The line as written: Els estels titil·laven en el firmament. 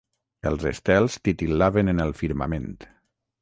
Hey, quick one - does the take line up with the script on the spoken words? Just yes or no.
yes